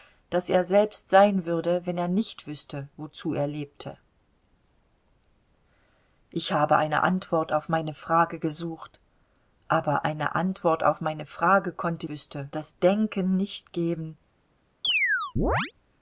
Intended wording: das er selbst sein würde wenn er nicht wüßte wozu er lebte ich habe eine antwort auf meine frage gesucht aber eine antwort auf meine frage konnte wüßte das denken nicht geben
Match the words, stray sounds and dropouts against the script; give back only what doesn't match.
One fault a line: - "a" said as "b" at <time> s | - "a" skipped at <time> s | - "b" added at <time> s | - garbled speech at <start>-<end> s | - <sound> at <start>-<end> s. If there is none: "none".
- chirp at 14.8-15.7 s